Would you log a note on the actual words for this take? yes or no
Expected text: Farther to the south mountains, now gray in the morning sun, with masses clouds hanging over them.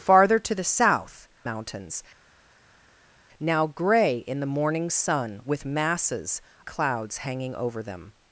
no